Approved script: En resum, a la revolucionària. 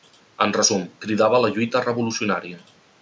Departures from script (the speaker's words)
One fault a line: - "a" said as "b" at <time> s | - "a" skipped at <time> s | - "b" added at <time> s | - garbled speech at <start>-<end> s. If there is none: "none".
- "cridava" added at 1.1 s
- "lluita" added at 1.6 s